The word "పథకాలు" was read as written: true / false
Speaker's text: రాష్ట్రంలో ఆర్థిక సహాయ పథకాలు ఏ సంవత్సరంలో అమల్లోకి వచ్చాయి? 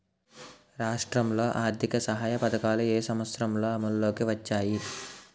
true